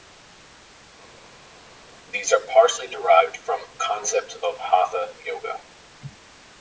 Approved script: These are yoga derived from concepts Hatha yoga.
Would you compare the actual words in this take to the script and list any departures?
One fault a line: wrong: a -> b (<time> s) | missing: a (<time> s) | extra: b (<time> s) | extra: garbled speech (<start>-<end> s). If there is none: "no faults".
wrong: yoga -> partially (2.4 s)
extra: of (4.4 s)